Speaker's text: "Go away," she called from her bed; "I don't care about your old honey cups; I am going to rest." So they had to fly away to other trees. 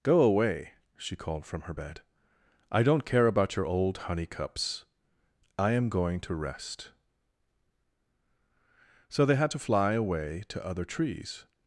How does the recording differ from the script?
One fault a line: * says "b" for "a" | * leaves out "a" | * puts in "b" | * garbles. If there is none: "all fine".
all fine